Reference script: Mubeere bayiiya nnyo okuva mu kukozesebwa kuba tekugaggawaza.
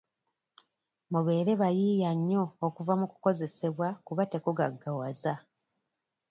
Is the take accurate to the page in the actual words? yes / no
yes